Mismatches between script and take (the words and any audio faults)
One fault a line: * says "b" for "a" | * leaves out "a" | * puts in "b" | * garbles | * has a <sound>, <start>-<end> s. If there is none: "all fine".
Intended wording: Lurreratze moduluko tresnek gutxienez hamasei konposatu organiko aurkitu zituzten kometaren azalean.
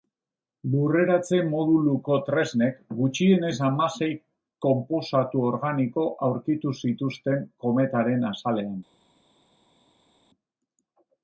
all fine